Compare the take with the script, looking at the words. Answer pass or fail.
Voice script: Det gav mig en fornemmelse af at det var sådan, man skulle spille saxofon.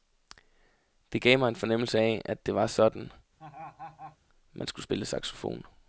pass